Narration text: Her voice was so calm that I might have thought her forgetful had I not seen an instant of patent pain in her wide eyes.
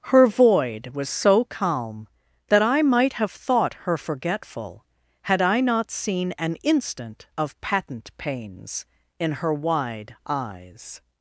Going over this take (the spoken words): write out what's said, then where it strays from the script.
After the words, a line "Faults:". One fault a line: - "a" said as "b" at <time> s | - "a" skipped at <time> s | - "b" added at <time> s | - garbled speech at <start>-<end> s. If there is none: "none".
Her void was so calm that I might have thought her forgetful had I not seen an instant of patent pains in her wide eyes.
Faults:
- "voice" said as "void" at 0.3 s
- "pain" said as "pains" at 8.2 s